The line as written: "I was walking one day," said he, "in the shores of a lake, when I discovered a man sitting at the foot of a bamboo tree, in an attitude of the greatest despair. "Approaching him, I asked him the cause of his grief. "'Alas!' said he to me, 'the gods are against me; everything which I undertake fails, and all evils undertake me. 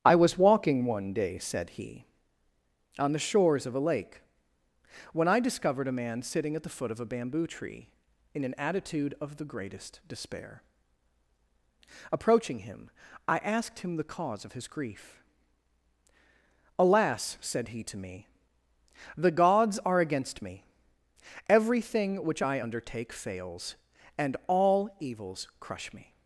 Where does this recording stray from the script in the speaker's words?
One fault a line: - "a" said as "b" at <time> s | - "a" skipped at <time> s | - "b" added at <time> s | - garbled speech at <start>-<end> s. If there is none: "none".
- "in" said as "on" at 3.0 s
- "undertake" said as "crush" at 25.6 s